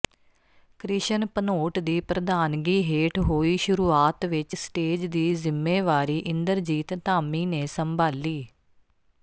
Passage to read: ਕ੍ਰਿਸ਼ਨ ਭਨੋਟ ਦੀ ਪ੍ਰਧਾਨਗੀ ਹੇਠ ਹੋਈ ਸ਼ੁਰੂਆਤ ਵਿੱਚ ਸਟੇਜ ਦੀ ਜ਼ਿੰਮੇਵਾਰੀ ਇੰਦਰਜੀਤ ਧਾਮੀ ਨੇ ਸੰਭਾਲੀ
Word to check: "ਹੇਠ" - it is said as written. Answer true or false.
true